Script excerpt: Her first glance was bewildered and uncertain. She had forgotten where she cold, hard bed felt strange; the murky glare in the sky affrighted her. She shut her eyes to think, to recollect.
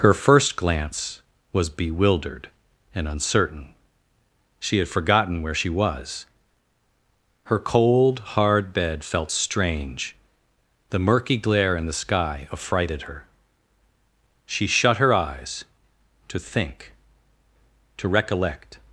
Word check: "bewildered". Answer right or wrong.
right